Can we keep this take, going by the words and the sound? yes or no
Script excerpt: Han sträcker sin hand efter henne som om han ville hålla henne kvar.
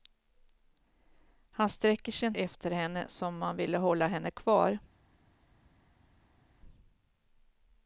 no